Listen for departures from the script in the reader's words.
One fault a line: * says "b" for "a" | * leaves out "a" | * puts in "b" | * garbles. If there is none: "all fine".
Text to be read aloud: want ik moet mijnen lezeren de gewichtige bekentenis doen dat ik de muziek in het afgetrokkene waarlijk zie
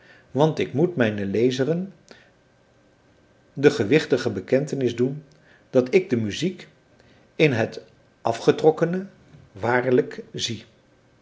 all fine